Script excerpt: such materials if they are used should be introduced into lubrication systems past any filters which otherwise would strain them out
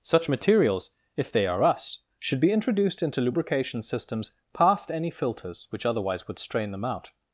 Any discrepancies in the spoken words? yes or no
yes